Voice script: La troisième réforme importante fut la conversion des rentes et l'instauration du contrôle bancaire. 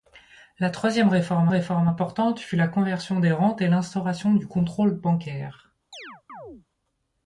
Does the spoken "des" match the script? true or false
true